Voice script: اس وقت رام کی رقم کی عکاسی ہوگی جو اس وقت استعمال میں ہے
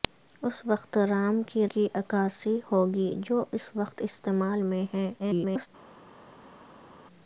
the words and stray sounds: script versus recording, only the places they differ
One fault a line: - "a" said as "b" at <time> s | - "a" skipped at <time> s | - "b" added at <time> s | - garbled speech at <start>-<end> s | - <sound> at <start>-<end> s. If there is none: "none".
- "رقم" skipped at 1.7 s
- garbled speech at 5.2-5.7 s